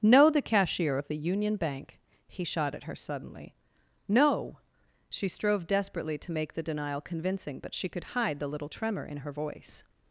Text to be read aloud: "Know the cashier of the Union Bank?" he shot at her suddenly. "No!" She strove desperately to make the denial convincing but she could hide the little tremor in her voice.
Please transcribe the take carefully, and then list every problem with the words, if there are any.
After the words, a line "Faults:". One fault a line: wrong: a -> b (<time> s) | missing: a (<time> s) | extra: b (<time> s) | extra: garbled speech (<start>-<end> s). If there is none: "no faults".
"Know the cashier of the Union Bank?" he shot at her suddenly. "No!" She strove desperately to make the denial convincing but she could hide the little tremor in her voice.
Faults:
no faults